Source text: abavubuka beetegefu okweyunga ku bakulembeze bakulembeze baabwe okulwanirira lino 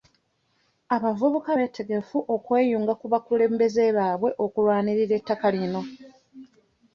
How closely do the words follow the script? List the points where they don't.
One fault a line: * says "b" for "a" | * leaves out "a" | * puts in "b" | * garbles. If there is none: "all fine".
* leaves out "bakulembeze"
* puts in "ettaka"